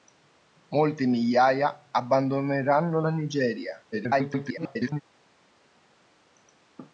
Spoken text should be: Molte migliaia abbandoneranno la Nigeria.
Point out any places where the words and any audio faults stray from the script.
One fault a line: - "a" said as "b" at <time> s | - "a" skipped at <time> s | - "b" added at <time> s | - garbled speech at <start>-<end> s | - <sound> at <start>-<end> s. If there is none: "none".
- garbled speech at 3.9-5.0 s